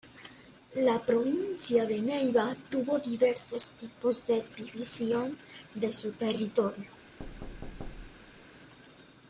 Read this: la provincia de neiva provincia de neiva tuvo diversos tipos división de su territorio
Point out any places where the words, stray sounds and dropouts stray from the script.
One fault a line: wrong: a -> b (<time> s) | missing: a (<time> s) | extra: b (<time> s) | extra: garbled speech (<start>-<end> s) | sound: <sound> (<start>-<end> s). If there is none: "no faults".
missing: provincia de neiva (2.5 s)
extra: de (4.2 s)
sound: thud (7.2-8.5 s)